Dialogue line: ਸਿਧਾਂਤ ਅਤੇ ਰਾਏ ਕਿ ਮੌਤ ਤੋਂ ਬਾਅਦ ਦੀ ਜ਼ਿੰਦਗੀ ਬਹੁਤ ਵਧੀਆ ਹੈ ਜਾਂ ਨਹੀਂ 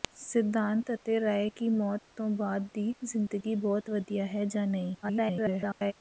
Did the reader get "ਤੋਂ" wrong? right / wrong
right